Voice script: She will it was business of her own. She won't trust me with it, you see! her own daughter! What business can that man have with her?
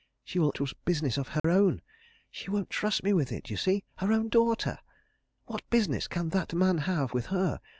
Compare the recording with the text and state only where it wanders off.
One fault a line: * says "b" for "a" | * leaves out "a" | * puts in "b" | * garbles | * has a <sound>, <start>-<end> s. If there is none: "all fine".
* has a dropout, 1.4-1.4 s